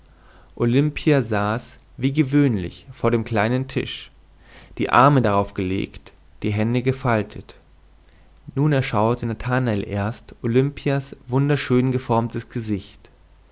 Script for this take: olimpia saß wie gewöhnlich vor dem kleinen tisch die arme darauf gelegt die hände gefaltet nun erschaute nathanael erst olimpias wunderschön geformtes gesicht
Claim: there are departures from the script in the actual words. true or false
false